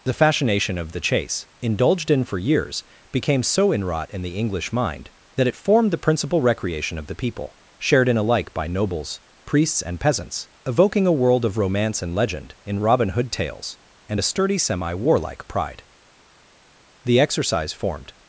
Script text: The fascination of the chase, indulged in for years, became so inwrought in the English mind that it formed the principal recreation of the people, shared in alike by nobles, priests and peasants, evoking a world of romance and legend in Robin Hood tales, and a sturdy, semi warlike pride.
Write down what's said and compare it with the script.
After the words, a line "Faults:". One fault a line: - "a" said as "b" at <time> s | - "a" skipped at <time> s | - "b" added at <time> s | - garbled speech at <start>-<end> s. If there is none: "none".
The fascination of the chase, indulged in for years, became so inwrought in the English mind that it formed the principal recreation of the people, shared in alike by nobles, priests and peasants, evoking a world of romance and legend in Robin Hood tales, and a sturdy, semi warlike pride. The exercise formed
Faults:
- "The exercise formed" added at 17.0 s